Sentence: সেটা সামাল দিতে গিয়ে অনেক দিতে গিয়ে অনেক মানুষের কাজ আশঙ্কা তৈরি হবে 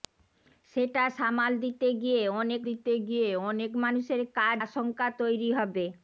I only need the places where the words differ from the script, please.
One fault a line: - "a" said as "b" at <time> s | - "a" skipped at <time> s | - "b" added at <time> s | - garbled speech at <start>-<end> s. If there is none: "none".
none